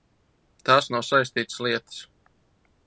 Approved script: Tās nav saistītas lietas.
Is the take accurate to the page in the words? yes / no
yes